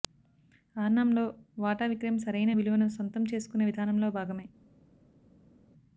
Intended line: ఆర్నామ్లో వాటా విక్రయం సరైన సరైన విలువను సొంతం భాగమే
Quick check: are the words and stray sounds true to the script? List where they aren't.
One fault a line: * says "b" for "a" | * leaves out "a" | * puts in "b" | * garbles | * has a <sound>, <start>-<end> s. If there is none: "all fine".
* leaves out "సరైన"
* puts in "చేసుకునే విధానంలో"